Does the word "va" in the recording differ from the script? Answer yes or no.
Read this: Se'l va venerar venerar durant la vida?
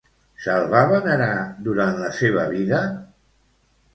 no